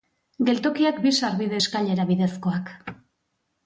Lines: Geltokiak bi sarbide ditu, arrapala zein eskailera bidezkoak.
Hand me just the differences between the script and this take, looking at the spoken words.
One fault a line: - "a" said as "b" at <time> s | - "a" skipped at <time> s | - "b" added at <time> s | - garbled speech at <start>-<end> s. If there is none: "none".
- "ditu arrapala zein" skipped at 1.6 s